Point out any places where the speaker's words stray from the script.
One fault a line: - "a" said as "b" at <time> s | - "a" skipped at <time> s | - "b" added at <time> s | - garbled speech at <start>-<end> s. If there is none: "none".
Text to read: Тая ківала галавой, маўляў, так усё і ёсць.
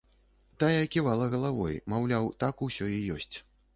none